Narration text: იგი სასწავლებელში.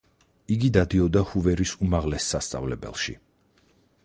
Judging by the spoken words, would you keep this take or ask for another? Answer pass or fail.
fail